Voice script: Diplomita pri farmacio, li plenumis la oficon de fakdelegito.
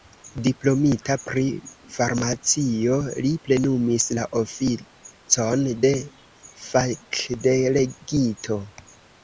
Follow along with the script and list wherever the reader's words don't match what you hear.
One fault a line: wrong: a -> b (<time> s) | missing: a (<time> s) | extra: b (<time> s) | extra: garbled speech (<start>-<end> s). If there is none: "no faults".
no faults